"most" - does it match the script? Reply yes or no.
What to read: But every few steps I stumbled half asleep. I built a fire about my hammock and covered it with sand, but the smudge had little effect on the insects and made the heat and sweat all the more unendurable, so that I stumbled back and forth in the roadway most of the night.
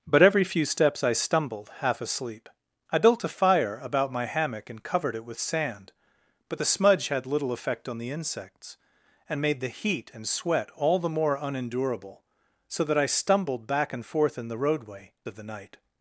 no